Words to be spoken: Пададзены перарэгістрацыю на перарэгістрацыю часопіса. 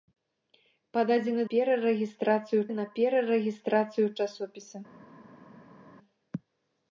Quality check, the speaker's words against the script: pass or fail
pass